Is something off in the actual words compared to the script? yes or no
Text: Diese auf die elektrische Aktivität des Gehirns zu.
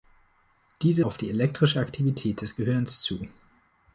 no